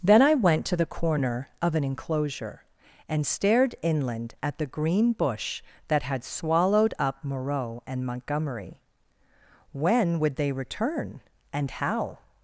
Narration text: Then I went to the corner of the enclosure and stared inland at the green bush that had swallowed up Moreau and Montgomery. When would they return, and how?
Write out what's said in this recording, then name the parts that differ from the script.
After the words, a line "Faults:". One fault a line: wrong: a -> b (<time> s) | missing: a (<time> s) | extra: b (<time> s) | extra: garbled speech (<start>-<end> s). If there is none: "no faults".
Then I went to the corner of an enclosure and stared inland at the green bush that had swallowed up Moreau and Montgomery. When would they return, and how?
Faults:
wrong: the -> an (1.8 s)